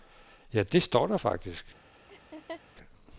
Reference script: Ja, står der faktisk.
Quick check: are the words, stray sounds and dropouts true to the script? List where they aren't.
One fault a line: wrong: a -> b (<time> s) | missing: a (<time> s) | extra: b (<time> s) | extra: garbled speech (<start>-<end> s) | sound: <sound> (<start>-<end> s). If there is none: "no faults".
extra: det (0.6 s)
sound: laugh (2.1-2.6 s)